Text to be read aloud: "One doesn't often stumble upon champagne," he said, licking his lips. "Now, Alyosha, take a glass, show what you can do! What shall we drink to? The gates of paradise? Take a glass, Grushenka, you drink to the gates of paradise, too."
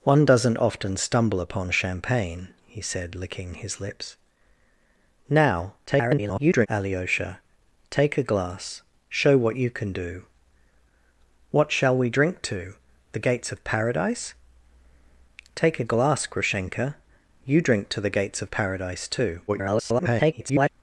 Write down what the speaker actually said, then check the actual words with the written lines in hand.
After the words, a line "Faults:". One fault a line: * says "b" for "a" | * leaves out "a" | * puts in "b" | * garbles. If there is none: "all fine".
"One doesn't often stumble upon champagne," he said, licking his lips. "Now, [garbled] Alyosha, take a glass, show what you can do! What shall we drink to? The gates of paradise? Take a glass, Grushenka, you drink to the gates of paradise, too." [garbled]
Faults:
* garbles
* garbles